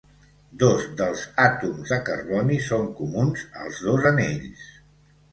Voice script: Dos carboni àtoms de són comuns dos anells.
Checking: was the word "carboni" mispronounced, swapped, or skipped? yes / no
yes